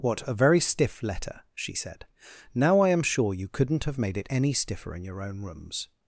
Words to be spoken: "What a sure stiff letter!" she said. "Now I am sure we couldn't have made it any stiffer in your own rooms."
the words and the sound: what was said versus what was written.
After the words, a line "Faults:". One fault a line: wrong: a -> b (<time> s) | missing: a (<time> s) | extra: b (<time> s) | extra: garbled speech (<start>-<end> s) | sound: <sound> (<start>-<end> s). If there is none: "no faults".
"What a very stiff letter!" she said. "Now I am sure you couldn't have made it any stiffer in your own rooms."
Faults:
wrong: sure -> very (0.3 s)
wrong: we -> you (3.4 s)